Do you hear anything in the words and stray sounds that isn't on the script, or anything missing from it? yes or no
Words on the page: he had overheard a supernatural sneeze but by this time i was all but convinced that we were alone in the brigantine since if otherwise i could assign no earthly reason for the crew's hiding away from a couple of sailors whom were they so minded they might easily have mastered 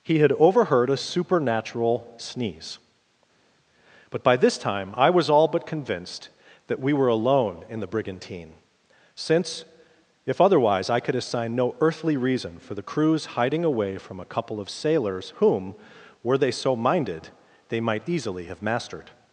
no